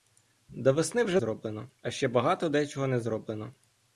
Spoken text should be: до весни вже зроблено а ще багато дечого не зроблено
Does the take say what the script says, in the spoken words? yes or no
yes